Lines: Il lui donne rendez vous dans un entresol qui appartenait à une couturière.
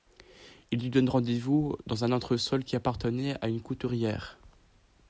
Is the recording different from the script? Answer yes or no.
no